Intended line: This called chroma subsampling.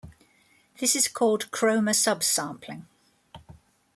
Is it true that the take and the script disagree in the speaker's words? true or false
true